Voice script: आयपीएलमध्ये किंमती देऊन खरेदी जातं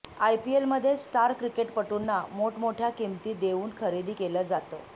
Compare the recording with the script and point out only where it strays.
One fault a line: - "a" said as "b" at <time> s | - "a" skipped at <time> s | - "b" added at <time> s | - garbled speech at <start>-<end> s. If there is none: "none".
- "स्टार क्रिकेटपटूंना मोठमोठ्या" added at 1.0 s
- "केलं" added at 4.1 s